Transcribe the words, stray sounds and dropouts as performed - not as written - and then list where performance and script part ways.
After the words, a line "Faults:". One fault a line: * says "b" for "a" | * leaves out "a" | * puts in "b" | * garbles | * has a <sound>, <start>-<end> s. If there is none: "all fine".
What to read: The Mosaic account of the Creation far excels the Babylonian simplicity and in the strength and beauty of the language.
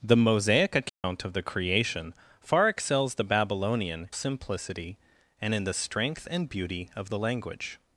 The Mosaic account of the Creation far excels the Babylonian simplicity and in the strength and beauty of the language.
Faults:
* has a dropout, 0.9-1.0 s